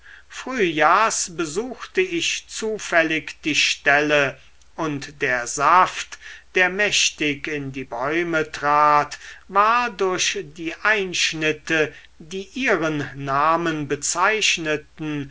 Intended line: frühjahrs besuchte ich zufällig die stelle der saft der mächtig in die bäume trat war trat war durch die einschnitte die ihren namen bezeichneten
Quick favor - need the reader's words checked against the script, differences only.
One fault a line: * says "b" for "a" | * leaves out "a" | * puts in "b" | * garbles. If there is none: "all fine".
* puts in "und"
* leaves out "trat war"